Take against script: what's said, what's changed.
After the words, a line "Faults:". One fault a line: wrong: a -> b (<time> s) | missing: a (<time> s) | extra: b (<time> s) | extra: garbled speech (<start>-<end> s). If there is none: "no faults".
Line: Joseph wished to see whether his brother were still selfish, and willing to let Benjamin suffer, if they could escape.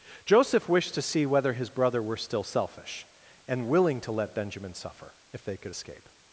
Joseph wished to see whether his brother were still selfish, and willing to let Benjamin suffer, if they could escape.
Faults:
no faults